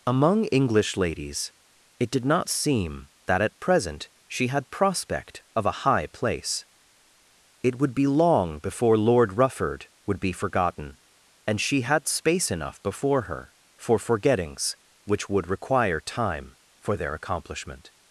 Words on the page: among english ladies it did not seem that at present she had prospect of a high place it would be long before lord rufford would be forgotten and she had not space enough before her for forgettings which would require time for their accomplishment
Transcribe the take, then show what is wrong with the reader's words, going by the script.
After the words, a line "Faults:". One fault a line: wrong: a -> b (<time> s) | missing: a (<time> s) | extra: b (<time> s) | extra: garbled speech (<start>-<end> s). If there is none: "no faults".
among english ladies it did not seem that at present she had prospect of a high place it would be long before lord rufford would be forgotten and she had space enough before her for forgettings which would require time for their accomplishment
Faults:
missing: not (12.1 s)